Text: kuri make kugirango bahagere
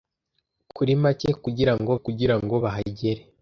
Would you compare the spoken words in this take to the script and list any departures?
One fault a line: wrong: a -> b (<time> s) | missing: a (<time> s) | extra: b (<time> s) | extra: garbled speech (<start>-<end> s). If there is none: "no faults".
extra: kugirango (2.0 s)